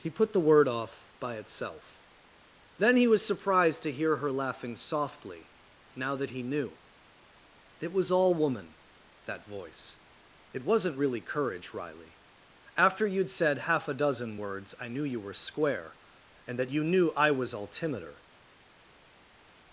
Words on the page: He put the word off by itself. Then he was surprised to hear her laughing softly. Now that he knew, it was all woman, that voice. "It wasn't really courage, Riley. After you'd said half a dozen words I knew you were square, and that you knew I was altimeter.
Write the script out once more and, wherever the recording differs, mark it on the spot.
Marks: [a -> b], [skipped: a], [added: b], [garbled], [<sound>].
He put the word off by itself. Then he was surprised to hear her laughing softly. Now that he knew, it was all woman, that voice. "It wasn't really courage, Riley. After you'd said half a dozen words I knew you were square, and that you knew I was altimeter.